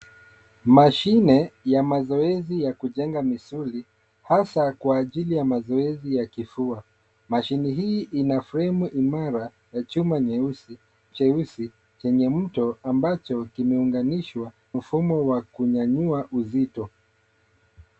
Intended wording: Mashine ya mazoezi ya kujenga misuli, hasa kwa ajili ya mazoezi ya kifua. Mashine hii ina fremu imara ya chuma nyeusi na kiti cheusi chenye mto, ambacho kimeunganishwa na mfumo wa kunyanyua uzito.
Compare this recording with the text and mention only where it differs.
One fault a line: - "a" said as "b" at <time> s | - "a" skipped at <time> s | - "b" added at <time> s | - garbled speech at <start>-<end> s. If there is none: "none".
- "na kiti" skipped at 10.8 s
- "na" skipped at 14.5 s